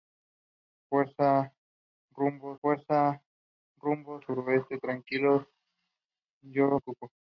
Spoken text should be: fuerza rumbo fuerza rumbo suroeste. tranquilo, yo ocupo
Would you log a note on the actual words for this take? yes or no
no